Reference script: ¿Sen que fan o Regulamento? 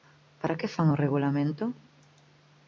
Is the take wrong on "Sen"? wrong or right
wrong